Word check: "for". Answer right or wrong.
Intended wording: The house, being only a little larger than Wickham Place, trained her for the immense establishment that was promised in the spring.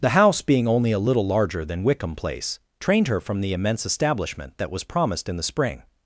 wrong